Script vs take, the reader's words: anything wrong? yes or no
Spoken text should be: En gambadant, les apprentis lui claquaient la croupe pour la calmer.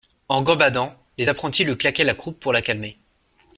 no